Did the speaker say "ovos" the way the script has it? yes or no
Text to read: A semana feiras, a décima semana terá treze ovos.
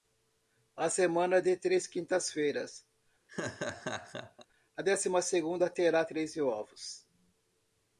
yes